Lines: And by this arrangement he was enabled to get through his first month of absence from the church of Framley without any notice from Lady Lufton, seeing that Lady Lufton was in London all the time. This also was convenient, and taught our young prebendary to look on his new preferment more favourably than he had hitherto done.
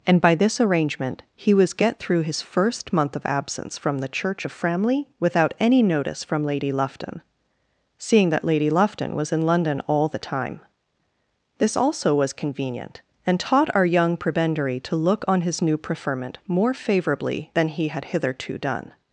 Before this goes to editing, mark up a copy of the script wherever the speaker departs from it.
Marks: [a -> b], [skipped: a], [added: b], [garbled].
And by this arrangement he was [skipped: enabled to] get through his first month of absence from the church of Framley without any notice from Lady Lufton, seeing that Lady Lufton was in London all the time. This also was convenient, and taught our young prebendary to look on his new preferment more favourably than he had hitherto done.